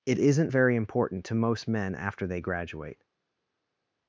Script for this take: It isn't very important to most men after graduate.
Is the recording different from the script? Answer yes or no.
yes